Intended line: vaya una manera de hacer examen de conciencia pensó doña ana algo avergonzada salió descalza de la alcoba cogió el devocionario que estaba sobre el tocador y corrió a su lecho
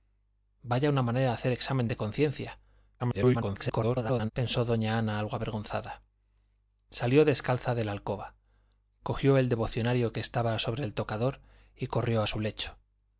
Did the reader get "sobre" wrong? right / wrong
right